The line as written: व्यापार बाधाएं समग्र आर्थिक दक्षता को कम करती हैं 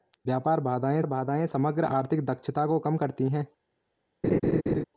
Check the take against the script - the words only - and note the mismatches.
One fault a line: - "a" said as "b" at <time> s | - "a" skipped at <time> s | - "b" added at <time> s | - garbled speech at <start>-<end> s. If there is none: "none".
- "बाधाएं" added at 1.1 s